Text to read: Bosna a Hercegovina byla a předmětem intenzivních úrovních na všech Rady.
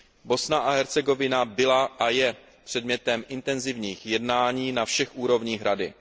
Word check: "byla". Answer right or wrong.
right